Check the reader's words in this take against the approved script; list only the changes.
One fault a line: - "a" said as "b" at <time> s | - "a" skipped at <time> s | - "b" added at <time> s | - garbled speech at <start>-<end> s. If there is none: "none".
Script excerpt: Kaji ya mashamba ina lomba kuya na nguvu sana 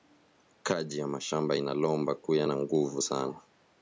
none